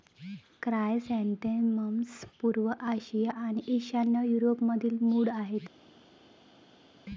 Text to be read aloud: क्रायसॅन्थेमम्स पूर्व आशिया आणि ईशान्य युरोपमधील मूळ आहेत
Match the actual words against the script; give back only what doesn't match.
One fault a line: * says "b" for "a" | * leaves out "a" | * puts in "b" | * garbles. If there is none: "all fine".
all fine